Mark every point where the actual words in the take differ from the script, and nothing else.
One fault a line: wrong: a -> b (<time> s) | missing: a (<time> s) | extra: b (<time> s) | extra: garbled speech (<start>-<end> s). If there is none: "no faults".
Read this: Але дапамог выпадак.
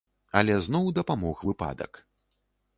extra: зноў (0.7 s)